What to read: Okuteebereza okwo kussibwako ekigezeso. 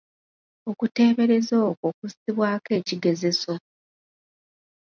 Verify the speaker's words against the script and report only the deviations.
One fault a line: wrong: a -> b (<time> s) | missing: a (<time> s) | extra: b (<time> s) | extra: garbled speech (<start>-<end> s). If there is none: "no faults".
no faults